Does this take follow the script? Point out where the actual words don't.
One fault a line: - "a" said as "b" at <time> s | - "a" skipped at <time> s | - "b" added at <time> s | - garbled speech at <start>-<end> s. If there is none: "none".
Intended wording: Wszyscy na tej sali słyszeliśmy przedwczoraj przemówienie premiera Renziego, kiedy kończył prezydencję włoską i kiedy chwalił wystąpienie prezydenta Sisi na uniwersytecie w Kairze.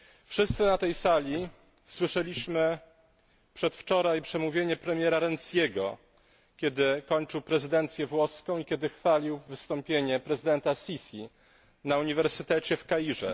none